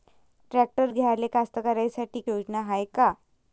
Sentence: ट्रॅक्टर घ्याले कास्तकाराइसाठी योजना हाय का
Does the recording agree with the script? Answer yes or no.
yes